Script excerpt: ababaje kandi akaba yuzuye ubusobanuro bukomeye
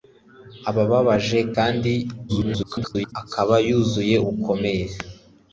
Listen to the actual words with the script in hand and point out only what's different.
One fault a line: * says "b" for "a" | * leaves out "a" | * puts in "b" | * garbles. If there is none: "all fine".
* garbles
* leaves out "ubusobanuro"